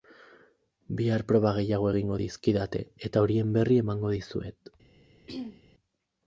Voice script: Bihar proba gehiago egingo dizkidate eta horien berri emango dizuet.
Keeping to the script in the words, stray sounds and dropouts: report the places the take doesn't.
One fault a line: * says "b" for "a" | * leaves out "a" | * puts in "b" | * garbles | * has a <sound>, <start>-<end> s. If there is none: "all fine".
* has a throat clearing, 5.3-5.6 s